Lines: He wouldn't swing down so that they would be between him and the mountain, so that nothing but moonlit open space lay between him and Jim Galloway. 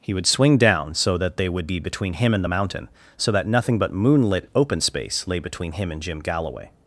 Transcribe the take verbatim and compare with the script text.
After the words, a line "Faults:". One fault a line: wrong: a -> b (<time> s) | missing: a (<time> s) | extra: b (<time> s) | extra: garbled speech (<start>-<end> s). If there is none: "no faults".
He would swing down so that they would be between him and the mountain, so that nothing but moonlit open space lay between him and Jim Galloway.
Faults:
wrong: wouldn't -> would (0.1 s)